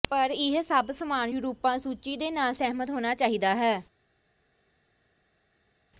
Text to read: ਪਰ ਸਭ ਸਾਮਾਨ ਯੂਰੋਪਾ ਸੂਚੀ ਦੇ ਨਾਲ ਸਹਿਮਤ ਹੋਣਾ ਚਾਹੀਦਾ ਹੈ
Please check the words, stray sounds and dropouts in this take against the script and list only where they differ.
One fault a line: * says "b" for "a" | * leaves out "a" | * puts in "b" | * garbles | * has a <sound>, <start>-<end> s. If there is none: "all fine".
* puts in "ਇਹ"